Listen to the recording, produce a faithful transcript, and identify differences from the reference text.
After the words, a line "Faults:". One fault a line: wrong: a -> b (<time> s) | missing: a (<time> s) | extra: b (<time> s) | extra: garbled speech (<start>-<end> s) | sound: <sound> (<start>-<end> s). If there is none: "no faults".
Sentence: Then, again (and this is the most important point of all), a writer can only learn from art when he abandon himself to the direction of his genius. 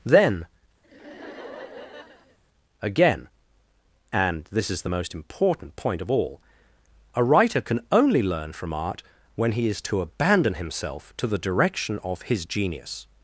Then, again (and this is the most important point of all), a writer can only learn from art when he is to abandon himself to the direction of his genius.
Faults:
sound: laugh (0.8-2.4 s)
extra: is to (9.7 s)